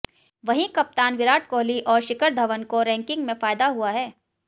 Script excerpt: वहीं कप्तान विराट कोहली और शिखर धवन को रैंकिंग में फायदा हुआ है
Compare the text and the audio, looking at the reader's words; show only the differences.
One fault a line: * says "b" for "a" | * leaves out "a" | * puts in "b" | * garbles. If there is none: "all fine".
all fine